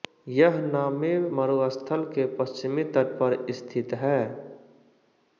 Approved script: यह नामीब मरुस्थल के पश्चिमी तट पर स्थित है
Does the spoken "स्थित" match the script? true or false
true